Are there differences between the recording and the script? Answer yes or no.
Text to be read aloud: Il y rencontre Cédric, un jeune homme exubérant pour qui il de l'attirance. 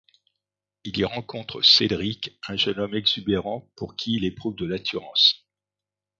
yes